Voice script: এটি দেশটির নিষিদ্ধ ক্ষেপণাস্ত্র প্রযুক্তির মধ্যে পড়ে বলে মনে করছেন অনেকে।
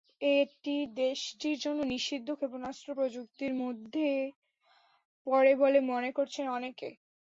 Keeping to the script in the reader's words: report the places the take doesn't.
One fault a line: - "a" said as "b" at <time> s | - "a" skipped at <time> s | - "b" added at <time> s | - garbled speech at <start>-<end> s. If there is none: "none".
- "জন্য" added at 1.6 s